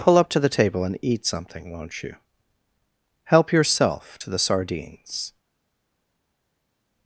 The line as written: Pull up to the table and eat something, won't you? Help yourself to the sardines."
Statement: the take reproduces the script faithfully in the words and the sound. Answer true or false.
true